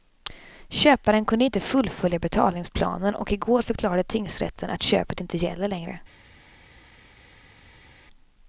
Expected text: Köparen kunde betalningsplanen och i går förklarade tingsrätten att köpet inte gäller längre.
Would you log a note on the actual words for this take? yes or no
yes